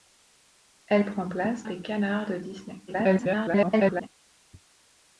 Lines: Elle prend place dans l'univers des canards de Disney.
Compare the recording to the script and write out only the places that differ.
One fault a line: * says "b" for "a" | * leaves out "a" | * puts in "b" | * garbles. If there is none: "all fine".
* leaves out "dans l'univers"
* garbles